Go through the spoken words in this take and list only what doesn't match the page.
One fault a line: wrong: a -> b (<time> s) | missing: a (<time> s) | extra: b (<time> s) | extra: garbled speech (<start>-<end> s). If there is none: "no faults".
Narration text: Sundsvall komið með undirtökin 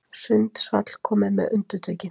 no faults